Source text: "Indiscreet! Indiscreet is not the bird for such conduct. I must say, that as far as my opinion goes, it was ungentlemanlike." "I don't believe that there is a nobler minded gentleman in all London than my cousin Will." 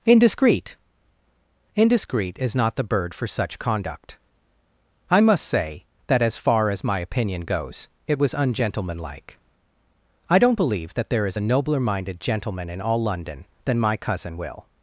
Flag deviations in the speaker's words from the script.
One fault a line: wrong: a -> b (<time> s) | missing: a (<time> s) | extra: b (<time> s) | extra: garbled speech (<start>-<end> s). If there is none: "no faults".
no faults